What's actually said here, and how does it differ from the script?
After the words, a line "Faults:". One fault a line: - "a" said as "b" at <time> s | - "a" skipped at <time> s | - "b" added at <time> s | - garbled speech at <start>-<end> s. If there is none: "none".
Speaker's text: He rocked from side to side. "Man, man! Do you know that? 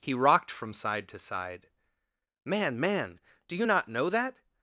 He rocked from side to side. "Man, man! Do you not know that?
Faults:
- "not" added at 3.6 s